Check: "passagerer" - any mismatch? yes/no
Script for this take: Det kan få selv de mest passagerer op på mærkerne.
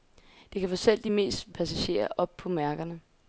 no